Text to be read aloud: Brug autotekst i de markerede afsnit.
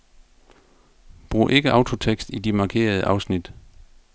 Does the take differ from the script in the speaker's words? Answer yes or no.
yes